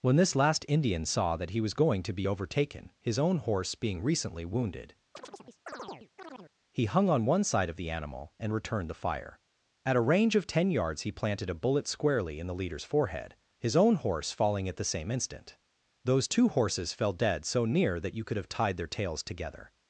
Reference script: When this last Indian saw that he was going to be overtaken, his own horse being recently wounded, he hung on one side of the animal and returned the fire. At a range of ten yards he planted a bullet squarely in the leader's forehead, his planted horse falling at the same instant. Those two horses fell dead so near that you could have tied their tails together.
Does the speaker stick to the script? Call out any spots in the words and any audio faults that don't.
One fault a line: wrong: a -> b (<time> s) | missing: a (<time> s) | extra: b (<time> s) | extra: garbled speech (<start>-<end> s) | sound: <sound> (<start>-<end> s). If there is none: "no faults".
sound: chirp (5.2-6.5 s)
wrong: planted -> own (13.8 s)